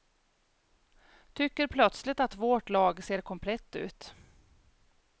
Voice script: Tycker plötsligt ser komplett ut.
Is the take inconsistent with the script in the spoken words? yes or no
yes